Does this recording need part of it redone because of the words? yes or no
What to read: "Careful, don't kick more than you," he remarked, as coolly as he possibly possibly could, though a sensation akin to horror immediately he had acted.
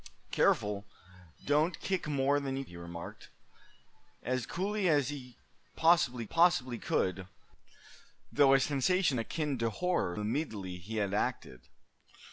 no